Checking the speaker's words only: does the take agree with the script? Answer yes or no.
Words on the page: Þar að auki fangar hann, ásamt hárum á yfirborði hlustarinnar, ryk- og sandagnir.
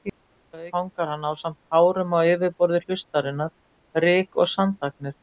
no